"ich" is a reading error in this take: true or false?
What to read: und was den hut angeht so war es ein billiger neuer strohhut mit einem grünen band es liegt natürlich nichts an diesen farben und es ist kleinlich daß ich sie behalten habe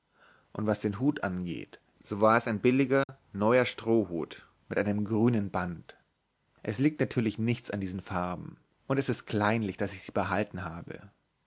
false